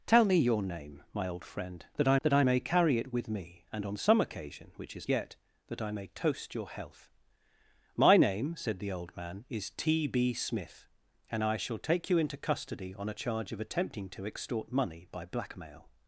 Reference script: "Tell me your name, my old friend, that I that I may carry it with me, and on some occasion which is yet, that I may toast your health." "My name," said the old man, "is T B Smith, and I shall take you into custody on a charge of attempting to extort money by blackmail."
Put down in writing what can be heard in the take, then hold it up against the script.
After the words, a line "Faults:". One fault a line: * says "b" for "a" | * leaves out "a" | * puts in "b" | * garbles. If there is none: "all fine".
"Tell me your name, my old friend, that I that I may carry it with me, and on some occasion which is yet, that I may toast your health." "My name," said the old man, "is T B Smith, and I shall take you into custody on a charge of attempting to extort money by blackmail."
Faults:
all fine